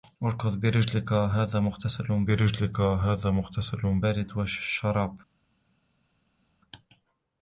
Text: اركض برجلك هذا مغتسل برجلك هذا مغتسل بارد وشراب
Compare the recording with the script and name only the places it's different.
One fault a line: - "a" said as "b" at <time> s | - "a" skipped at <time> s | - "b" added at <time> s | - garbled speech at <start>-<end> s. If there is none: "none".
none